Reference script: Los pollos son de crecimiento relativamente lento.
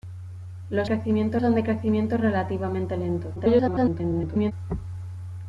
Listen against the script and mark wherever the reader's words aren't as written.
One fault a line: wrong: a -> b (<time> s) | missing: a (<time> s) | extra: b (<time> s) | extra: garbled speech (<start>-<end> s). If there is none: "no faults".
wrong: pollos -> crecimiento (0.8 s)
extra: garbled speech (3.3-4.5 s)